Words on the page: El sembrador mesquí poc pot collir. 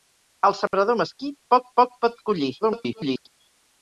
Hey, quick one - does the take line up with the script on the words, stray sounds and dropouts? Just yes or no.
no